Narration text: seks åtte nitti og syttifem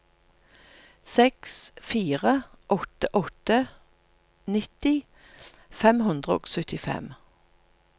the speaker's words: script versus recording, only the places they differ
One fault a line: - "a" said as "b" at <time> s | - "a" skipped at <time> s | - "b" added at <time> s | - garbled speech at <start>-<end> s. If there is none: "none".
- "fire" added at 1.9 s
- "åtte" added at 3.2 s
- "fem hundre" added at 5.8 s